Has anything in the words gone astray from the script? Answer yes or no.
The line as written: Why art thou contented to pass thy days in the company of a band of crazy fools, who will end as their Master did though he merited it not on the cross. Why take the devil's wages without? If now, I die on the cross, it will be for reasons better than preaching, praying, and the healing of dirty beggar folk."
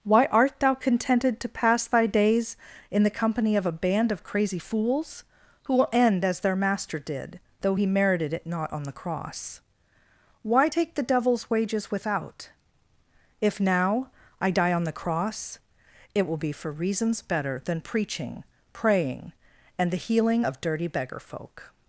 no